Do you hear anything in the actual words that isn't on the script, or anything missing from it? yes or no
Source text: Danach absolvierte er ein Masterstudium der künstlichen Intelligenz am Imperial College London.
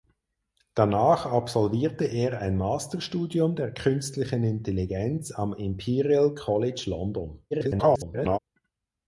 yes